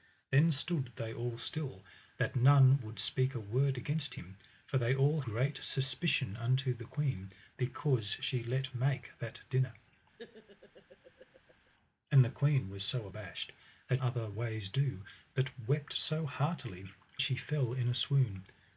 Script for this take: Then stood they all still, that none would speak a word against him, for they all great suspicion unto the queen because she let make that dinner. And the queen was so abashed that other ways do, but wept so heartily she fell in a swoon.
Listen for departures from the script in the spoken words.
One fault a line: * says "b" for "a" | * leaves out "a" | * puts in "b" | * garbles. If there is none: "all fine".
all fine